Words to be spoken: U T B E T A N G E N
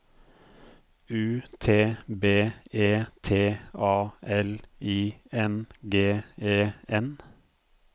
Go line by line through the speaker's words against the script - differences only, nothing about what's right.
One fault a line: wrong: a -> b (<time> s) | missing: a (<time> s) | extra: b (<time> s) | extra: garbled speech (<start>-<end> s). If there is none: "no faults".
extra: L I (4.2 s)